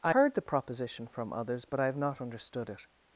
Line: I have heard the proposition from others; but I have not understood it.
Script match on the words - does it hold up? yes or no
no